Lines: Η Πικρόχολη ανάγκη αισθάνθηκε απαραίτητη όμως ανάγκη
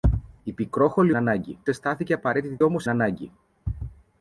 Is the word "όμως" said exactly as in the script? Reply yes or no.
yes